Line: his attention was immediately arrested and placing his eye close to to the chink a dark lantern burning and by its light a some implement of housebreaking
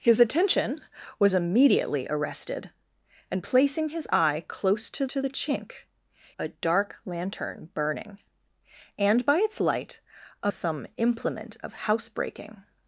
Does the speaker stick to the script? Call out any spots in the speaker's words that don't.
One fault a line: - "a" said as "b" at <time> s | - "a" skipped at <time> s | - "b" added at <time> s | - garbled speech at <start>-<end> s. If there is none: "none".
none